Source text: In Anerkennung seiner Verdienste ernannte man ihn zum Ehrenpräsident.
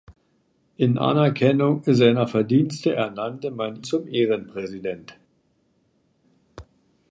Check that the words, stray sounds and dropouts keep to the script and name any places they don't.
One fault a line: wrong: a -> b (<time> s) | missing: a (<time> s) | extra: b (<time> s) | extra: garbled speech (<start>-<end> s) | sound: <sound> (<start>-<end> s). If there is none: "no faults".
missing: ihn (3.8 s)